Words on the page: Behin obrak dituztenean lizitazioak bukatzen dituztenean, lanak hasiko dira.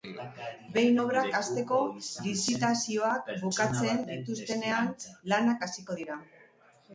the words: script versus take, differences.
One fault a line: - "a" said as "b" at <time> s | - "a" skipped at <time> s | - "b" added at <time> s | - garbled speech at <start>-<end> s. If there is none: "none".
- "dituztenean" said as "hasteko" at 1.4 s